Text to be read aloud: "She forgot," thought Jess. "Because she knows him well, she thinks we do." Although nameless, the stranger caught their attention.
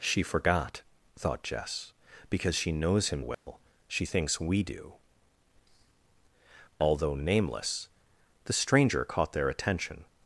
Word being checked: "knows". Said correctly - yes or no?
yes